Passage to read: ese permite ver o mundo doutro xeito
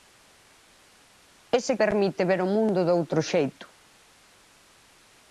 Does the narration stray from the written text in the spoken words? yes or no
no